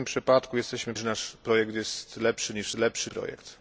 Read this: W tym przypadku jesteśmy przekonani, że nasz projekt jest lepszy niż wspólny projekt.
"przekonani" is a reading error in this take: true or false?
true